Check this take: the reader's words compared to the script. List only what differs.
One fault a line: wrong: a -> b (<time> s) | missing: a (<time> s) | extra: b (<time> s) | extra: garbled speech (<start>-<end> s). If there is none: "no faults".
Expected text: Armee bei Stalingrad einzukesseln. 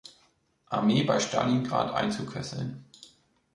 no faults